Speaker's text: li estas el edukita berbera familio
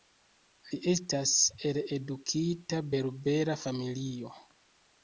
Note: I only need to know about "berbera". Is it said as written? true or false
true